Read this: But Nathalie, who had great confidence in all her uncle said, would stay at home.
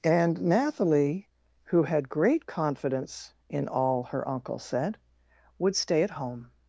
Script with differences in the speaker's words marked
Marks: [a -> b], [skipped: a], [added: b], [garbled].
[But -> And] Nathalie, who had great confidence in all her uncle said, would stay at home.